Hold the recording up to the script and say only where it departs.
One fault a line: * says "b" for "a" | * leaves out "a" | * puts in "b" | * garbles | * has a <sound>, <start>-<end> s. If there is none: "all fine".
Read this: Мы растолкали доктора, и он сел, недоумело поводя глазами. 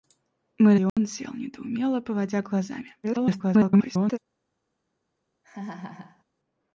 * leaves out "растолкали доктора"
* has a dropout, 0.9-1.0 s
* garbles
* has a laugh, 5.4-6.2 s